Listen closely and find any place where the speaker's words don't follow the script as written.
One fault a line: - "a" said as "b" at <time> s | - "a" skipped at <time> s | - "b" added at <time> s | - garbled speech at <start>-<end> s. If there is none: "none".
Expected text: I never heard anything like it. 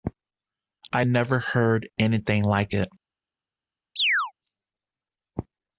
none